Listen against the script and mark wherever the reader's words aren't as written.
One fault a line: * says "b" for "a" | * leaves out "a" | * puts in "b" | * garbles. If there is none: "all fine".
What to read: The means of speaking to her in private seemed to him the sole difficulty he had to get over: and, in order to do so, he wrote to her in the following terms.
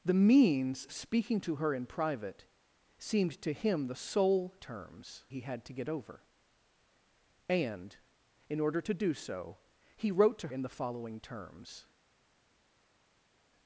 * leaves out "of"
* says "terms" for "difficulty"
* leaves out "her"